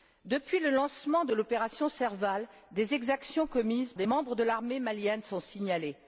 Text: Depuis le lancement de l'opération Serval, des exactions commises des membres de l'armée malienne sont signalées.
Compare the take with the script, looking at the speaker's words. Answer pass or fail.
pass